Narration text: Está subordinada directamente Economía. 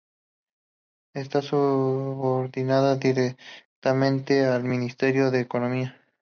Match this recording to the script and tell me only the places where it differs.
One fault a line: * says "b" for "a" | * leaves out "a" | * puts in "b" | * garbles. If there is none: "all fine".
* puts in "al Ministerio de"